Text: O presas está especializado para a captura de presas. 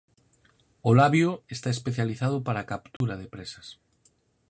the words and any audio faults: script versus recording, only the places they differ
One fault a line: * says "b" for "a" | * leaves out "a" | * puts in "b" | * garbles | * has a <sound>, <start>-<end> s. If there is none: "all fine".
* says "labio" for "presas"
* has a dropout, 3.0-3.0 s